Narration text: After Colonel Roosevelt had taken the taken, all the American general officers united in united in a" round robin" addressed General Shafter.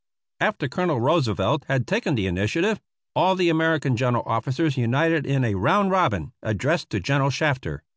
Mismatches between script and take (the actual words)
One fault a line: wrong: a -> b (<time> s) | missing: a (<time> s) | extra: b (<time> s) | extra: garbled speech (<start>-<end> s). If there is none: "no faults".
wrong: taken -> initiative (2.2 s)
missing: united in (5.4 s)
extra: to (6.9 s)